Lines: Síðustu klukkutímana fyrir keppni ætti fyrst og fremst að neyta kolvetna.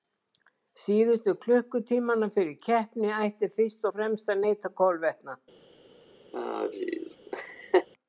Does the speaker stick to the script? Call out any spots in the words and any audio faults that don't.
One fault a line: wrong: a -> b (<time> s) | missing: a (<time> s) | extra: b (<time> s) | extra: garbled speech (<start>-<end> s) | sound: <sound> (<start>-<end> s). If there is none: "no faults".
sound: laugh (6.3-7.9 s)